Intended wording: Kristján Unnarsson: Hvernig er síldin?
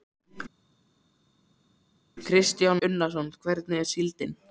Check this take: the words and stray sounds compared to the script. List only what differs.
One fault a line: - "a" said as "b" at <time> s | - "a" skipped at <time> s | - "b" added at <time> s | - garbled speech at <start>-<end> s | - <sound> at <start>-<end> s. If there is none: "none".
none